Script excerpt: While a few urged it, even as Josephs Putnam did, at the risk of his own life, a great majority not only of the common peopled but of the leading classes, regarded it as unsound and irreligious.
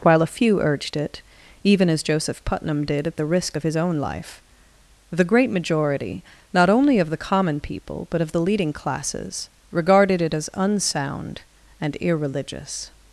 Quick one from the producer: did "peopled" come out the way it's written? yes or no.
no